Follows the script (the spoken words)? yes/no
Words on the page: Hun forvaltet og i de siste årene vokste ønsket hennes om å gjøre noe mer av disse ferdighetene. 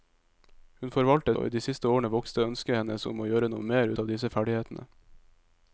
yes